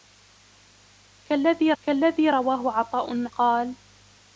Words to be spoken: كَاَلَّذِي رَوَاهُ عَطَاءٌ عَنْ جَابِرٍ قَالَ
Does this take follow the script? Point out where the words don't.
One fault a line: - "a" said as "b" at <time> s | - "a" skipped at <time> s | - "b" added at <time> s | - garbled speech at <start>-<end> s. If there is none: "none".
- "كَاَلَّذِي" added at 1.8 s
- "عَنْ جَابِرٍ" skipped at 3.3 s